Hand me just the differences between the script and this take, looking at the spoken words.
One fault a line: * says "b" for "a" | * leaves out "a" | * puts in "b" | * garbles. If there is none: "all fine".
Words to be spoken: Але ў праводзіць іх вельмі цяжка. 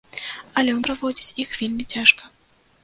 all fine